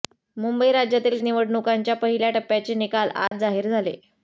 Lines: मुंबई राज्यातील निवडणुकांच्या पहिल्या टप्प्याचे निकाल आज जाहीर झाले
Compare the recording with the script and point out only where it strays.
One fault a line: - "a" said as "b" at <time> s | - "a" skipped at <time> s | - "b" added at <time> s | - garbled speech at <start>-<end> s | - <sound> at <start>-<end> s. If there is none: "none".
- dropout at 3.3-3.3 s